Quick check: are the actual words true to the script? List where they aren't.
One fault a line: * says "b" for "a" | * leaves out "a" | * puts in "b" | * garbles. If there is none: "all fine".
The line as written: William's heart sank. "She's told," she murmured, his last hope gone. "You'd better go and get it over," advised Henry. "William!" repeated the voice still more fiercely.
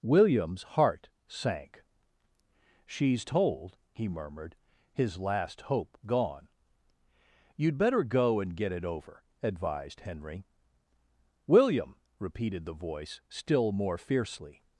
* says "he" for "she"